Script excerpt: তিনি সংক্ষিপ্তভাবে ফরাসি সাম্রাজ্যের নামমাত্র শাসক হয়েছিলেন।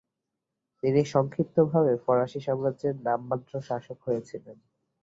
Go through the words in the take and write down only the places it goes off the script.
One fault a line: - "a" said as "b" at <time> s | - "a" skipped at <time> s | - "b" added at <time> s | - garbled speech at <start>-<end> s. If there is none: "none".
none